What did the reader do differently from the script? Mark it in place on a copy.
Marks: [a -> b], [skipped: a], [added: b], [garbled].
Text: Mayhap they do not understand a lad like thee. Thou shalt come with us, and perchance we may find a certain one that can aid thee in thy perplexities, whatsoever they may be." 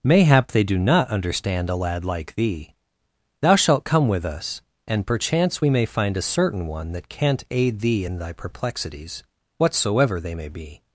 Mayhap they do not understand a lad like thee. Thou shalt come with us, and perchance we may find a certain one that [can -> can't] aid thee in thy perplexities, whatsoever they may be."